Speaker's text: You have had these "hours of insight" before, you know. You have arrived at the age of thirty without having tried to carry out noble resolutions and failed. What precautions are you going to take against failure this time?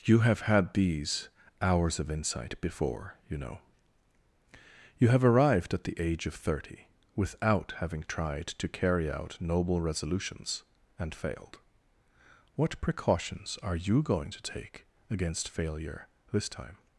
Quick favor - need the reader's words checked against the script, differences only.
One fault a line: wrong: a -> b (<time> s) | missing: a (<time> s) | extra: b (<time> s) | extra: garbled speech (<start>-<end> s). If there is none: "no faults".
no faults